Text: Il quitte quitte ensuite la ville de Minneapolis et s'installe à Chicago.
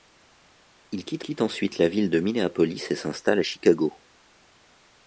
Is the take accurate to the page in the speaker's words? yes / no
yes